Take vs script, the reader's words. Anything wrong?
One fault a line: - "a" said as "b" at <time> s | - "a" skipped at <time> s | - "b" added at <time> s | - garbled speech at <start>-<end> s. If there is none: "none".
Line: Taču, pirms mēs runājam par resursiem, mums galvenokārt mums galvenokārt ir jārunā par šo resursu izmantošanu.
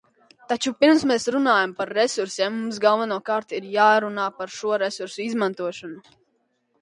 - "mums galvenokārt" skipped at 3.5 s